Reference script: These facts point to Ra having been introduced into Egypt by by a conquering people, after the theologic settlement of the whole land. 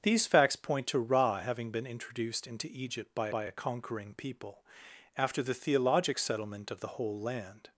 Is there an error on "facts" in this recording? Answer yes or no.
no